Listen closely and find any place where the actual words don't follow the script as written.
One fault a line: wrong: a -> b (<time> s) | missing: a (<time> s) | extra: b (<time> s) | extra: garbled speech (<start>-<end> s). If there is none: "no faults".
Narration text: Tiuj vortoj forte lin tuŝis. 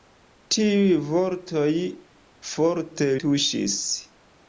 missing: lin (3.1 s)